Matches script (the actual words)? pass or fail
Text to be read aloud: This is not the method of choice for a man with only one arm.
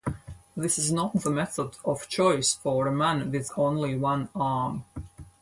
pass